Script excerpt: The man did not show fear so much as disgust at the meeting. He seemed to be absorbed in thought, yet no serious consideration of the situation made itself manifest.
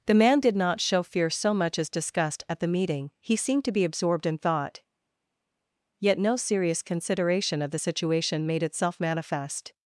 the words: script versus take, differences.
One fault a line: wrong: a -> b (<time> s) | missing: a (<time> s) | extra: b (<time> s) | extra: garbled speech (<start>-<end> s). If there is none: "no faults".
no faults